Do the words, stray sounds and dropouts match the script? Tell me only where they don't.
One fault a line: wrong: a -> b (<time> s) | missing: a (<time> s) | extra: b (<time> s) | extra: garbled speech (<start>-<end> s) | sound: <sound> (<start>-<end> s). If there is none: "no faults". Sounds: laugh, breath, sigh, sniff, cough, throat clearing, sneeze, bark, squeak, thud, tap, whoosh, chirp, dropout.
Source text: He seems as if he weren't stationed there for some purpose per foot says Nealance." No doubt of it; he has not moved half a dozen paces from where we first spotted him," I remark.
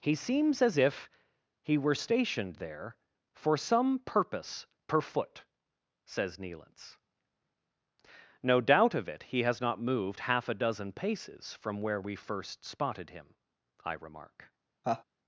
wrong: weren't -> were (1.8 s)
sound: laugh (14.8-15.0 s)